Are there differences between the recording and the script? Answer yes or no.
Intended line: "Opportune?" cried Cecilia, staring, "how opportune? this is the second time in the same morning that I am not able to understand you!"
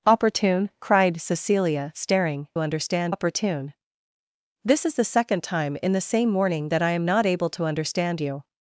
yes